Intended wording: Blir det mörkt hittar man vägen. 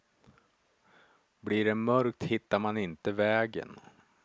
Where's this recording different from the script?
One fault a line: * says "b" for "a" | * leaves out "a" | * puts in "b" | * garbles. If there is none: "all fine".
* puts in "inte"